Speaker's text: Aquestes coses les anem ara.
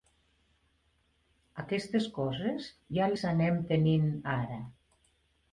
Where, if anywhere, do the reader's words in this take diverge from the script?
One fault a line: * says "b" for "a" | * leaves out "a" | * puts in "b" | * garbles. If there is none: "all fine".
* puts in "ja"
* puts in "tenint"